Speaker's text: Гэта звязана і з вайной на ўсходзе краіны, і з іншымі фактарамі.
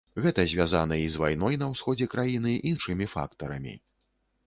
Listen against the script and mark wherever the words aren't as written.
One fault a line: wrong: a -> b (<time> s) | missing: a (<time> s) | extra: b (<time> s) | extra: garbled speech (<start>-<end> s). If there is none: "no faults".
missing: з (2.7 s)